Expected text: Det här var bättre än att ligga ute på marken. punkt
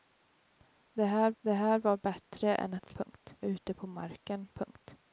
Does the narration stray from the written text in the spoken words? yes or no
yes